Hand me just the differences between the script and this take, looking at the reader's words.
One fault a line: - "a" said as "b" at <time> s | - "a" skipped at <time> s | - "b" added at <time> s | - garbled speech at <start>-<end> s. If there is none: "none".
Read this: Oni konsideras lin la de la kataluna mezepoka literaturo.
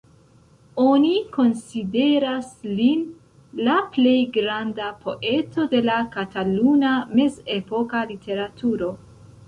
- "plej granda poeto" added at 4.0 s